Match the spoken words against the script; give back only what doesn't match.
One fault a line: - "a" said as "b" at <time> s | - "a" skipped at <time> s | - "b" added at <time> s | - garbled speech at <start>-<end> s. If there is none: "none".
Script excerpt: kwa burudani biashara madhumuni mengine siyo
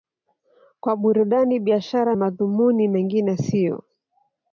none